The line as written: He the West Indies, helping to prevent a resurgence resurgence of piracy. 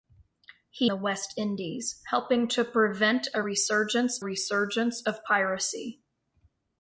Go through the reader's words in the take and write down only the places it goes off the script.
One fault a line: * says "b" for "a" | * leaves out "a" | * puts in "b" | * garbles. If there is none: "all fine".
all fine